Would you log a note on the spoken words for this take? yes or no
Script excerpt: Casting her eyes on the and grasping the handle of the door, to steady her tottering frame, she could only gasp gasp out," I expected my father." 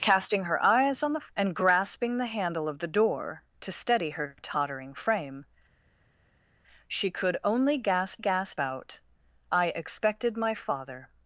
no